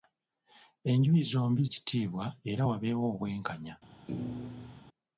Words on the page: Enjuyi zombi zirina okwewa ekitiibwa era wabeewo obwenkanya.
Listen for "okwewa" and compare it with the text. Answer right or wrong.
wrong